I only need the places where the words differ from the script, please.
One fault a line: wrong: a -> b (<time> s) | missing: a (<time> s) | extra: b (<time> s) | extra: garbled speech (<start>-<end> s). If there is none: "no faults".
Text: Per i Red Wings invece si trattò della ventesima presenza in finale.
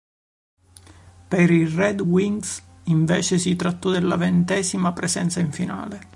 no faults